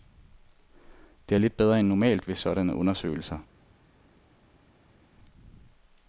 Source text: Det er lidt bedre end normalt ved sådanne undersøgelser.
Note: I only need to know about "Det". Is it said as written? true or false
true